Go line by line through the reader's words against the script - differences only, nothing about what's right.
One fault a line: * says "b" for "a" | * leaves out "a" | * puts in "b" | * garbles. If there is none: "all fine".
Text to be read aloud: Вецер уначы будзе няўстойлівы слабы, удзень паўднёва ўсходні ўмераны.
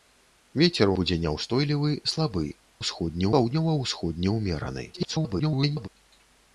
* leaves out "уначы"
* says "ўсходні" for "удзень"
* garbles